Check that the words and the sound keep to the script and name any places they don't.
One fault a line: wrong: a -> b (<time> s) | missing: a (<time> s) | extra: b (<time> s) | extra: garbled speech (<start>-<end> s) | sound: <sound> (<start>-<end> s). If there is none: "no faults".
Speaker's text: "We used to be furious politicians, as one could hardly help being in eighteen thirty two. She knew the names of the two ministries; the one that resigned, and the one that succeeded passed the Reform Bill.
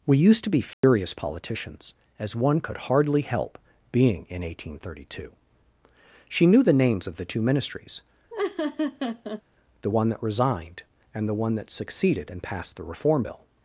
sound: dropout (0.7-0.8 s)
sound: laugh (8.3-9.4 s)
extra: and (12.3 s)